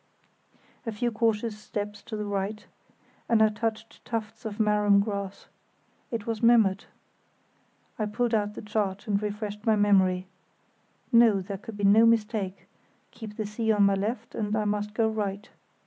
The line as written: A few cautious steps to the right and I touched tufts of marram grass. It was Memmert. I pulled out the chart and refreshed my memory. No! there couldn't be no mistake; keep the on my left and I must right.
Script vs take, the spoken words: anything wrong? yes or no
yes